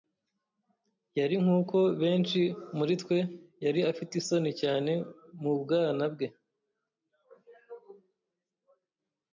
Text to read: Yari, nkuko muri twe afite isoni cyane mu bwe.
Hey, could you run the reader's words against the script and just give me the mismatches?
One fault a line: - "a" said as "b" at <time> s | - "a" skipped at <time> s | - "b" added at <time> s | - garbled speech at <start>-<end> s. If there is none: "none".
- "benshi" added at 2.0 s
- "yari" added at 3.6 s
- "bwana" added at 5.6 s